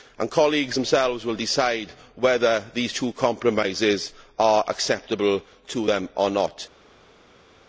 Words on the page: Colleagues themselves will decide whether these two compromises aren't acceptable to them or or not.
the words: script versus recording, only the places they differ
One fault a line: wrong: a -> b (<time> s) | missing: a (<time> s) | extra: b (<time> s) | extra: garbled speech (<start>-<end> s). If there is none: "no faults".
wrong: aren't -> are (4.4 s)
missing: or (6.3 s)